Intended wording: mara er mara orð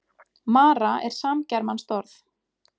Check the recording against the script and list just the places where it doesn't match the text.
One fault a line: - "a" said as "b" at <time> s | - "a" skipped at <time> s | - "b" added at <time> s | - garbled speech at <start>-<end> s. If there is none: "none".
- "mara" said as "samgermanskt" at 1.2 s